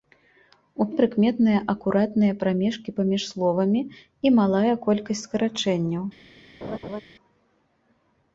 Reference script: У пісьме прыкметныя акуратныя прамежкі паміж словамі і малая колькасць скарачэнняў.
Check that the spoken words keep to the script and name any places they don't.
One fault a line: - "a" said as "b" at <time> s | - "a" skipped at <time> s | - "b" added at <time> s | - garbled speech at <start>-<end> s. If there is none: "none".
- "пісьме" skipped at 0.8 s